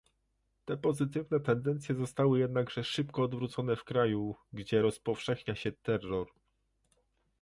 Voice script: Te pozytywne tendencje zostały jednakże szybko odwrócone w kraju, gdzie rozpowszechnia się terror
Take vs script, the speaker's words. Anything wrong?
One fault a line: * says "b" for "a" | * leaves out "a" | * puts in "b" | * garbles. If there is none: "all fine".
all fine